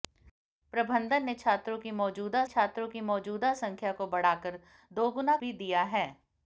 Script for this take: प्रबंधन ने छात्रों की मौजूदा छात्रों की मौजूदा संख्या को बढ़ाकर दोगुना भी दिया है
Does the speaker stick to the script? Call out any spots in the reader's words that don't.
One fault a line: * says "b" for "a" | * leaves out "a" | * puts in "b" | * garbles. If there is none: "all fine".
all fine